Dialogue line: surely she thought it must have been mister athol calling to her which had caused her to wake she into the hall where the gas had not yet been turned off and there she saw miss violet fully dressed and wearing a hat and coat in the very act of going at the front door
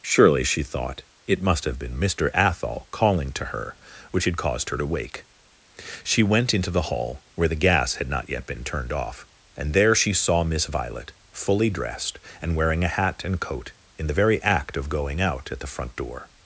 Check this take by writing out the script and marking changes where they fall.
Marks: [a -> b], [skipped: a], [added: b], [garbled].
surely she thought it must have been mister athol calling to her which had caused her to wake she [added: went] into the hall where the gas had not yet been turned off and there she saw miss violet fully dressed and wearing a hat and coat in the very act of going [added: out] at the front door